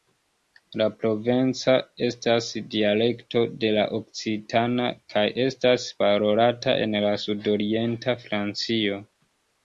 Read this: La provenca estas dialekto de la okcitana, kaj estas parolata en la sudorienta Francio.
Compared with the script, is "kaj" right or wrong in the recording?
right